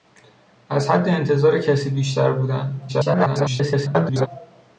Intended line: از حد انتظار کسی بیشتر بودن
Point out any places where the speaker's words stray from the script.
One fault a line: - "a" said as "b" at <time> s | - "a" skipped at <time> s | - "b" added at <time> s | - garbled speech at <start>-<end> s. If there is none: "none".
- garbled speech at 2.9-4.3 s